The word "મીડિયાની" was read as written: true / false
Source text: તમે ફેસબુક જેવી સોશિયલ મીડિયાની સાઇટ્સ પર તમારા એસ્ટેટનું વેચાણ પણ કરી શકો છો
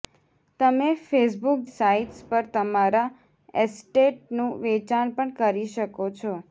false